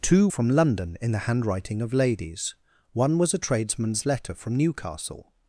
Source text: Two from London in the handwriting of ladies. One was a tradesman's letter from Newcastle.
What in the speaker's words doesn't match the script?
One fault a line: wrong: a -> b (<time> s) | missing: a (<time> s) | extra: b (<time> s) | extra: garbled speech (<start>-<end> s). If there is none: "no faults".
no faults